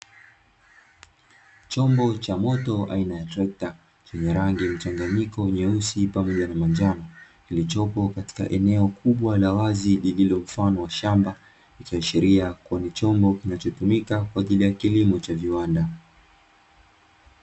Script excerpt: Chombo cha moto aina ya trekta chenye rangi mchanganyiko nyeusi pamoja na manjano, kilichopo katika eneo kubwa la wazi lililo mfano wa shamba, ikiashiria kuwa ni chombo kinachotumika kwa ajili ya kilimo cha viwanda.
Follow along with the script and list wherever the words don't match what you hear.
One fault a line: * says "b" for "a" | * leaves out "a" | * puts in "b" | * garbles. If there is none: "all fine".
all fine